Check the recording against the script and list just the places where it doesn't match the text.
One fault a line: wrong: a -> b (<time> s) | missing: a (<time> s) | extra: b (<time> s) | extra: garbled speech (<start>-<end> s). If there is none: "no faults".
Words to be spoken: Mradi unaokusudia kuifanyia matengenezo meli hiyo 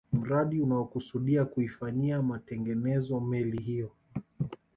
no faults